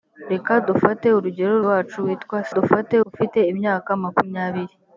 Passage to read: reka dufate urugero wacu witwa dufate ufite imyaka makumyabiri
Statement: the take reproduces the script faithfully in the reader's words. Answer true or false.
true